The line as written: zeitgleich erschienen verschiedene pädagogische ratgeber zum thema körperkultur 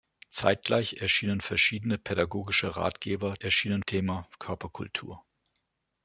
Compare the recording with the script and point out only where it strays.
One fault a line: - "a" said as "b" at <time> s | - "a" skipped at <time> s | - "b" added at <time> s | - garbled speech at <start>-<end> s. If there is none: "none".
- "zum" said as "erschienen" at 3.4 s